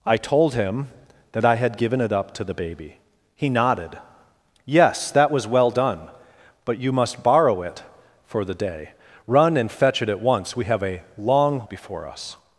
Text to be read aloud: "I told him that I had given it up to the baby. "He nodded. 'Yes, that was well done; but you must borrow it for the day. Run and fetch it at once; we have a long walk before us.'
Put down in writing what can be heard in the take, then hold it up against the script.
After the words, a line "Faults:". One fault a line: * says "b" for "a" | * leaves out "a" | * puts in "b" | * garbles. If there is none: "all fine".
"I told him that I had given it up to the baby. "He nodded. 'Yes, that was well done; but you must borrow it for the day. Run and fetch it at once; we have a long before us.'
Faults:
* leaves out "walk"